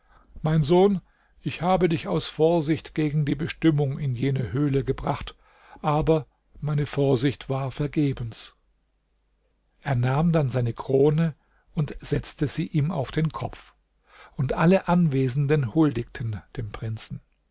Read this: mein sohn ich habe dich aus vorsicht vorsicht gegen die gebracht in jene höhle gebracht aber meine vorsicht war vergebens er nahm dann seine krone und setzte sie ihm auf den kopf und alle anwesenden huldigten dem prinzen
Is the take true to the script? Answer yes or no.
no